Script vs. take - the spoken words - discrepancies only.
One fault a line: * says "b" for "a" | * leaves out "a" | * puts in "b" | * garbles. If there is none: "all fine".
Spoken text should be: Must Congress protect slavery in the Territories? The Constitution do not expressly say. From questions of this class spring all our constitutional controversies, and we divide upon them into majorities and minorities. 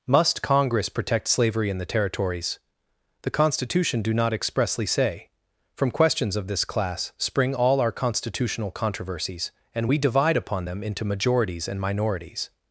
all fine